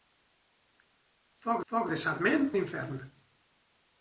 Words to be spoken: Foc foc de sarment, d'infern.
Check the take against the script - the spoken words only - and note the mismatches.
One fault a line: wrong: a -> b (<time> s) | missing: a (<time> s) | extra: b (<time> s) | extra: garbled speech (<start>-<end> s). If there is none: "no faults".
no faults